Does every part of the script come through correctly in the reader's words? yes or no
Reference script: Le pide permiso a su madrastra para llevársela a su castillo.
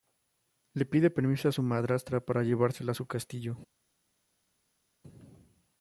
yes